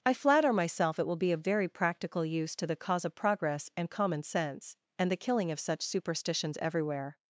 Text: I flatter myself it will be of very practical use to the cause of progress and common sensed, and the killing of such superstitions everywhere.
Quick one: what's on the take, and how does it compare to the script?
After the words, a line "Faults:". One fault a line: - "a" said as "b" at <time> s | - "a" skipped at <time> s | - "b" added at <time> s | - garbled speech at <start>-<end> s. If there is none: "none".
I flatter myself it will be of very practical use to the cause of progress and common sense, and the killing of such superstitions everywhere.
Faults:
- "sensed" said as "sense" at 4.2 s